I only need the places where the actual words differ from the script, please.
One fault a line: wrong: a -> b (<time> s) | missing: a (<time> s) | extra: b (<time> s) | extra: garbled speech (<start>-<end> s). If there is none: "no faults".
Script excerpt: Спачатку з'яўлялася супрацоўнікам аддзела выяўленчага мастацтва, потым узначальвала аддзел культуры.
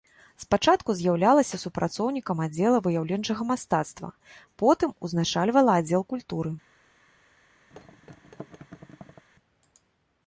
no faults